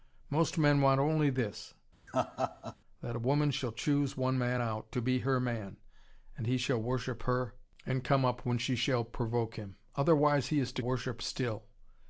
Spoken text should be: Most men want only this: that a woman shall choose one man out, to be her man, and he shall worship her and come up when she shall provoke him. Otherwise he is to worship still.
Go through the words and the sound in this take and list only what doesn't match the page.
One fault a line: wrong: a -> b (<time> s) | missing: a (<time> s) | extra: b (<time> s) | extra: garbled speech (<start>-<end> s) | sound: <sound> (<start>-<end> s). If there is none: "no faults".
sound: laugh (2.1-2.8 s)